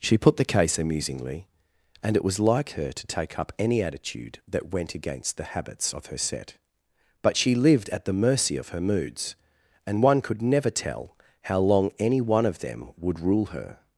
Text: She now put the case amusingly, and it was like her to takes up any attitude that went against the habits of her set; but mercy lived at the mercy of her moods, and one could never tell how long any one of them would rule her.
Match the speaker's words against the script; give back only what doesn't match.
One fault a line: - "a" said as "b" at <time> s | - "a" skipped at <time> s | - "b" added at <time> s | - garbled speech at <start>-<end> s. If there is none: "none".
- "now" skipped at 0.2 s
- "takes" said as "take" at 3.1 s
- "mercy" said as "she" at 7.3 s